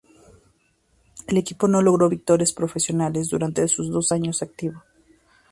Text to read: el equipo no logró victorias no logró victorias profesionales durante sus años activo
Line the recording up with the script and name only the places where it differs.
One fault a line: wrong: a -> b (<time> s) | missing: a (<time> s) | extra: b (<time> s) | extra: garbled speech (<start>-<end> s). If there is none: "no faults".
missing: no logró victorias (2.5 s)
extra: dos (3.9 s)